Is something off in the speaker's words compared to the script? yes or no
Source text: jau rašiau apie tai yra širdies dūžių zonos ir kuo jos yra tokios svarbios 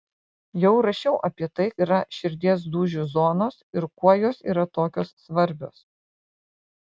no